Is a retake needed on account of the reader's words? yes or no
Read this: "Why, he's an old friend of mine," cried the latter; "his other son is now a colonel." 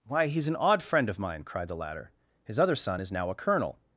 yes